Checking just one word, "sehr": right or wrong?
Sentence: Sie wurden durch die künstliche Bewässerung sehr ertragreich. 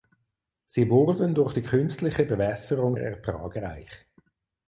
wrong